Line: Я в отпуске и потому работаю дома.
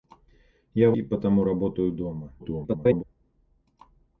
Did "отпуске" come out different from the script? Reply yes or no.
yes